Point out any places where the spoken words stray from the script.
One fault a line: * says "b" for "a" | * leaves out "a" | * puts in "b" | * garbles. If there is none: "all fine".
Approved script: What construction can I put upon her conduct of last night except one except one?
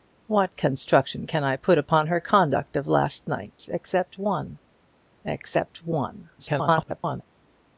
* garbles